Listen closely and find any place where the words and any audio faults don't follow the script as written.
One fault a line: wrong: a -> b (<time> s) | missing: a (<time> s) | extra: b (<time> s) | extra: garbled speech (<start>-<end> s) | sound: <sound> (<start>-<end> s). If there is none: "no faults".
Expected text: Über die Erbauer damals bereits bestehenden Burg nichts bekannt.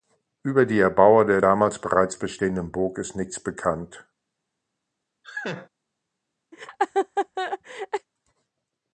extra: der (1.2 s)
extra: ist (3.0 s)
sound: laugh (5.2-5.7 s)
sound: laugh (6.5-8.1 s)